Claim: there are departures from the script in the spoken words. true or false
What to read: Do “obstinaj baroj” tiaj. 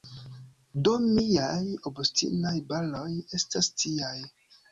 true